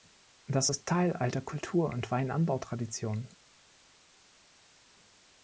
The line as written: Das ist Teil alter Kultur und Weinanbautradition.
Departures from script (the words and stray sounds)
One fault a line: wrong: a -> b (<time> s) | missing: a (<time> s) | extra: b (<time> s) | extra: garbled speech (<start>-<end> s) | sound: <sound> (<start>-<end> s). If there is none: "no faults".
no faults